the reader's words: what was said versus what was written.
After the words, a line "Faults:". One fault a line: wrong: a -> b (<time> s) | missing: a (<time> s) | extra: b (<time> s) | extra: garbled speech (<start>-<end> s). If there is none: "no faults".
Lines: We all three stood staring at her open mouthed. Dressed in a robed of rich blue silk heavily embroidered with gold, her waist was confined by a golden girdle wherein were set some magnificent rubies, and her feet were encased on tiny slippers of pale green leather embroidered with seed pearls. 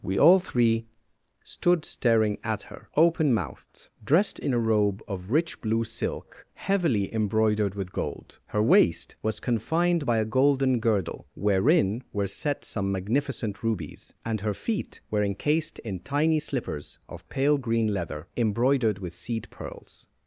We all three stood staring at her open mouthed. Dressed in a robe of rich blue silk heavily embroidered with gold, her waist was confined by a golden girdle wherein were set some magnificent rubies, and her feet were encased in tiny slippers of pale green leather embroidered with seed pearls.
Faults:
wrong: robed -> robe (4.6 s)
wrong: on -> in (15.8 s)